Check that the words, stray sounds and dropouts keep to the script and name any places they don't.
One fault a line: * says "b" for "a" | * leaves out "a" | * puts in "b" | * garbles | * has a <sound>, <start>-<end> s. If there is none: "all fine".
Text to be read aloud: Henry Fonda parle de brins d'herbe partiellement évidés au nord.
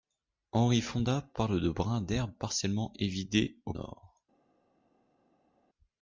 all fine